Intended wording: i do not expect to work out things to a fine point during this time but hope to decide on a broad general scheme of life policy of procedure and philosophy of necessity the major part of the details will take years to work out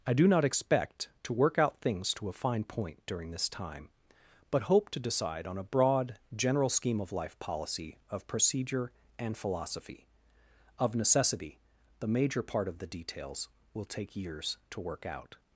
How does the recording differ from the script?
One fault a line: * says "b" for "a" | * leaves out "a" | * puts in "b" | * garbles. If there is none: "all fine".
all fine